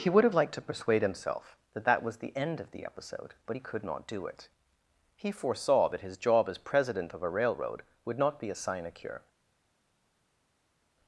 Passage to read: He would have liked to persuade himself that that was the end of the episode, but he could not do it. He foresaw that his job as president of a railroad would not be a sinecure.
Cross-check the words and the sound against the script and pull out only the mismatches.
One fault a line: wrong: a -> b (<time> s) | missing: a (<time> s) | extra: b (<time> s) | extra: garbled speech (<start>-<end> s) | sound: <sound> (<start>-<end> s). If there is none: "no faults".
no faults